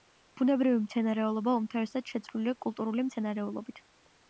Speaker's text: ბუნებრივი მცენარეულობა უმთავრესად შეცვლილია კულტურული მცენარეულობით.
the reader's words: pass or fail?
pass